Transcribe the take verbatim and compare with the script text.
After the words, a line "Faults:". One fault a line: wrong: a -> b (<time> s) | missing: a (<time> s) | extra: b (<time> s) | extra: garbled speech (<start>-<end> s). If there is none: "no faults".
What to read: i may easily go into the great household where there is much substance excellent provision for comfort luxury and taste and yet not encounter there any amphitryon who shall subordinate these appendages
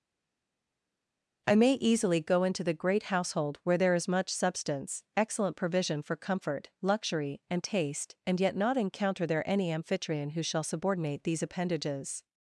i may easily go into the great household where there is much substance excellent provision for comfort luxury and taste and yet not encounter there any amphitryon who shall subordinate these appendages
Faults:
no faults